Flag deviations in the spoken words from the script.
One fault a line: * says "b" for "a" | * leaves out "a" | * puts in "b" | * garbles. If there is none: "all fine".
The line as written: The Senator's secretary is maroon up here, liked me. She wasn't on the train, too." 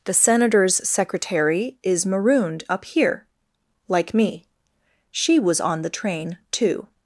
* says "marooned" for "maroon"
* says "like" for "liked"
* says "was" for "wasn't"